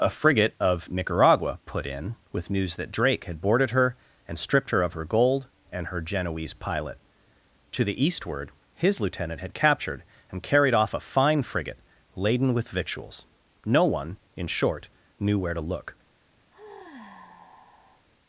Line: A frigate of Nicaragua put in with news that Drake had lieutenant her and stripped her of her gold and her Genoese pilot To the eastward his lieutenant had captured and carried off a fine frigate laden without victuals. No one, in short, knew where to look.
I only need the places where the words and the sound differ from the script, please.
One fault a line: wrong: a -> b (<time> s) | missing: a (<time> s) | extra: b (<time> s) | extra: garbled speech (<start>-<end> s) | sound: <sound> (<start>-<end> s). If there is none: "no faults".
wrong: lieutenant -> boarded (3.4 s)
wrong: without -> with (12.6 s)
sound: sigh (16.5-18.1 s)